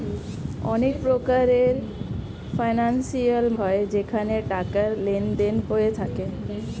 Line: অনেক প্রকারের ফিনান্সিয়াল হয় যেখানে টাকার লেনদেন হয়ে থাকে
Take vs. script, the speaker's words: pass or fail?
pass